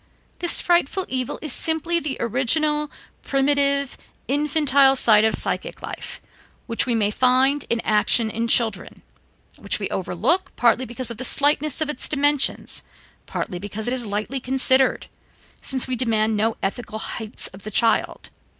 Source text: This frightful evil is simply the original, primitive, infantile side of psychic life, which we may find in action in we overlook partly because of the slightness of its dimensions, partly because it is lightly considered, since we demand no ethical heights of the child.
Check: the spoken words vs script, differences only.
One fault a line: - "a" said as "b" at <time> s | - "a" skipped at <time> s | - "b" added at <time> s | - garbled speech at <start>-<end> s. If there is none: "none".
- "children which" added at 8.5 s